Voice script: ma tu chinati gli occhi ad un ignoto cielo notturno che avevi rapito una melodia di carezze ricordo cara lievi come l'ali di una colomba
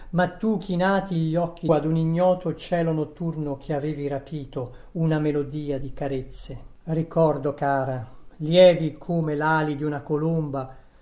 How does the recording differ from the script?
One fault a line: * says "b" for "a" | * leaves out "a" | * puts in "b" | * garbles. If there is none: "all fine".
all fine